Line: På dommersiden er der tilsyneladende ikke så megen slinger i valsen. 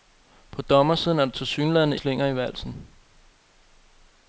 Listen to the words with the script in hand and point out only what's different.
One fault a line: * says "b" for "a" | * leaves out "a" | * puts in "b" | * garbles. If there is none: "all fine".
* leaves out "ikke så megen"